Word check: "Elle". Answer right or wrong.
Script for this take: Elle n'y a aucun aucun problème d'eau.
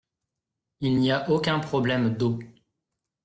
wrong